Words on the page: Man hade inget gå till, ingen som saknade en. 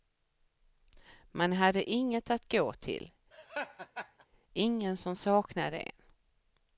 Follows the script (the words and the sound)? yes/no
no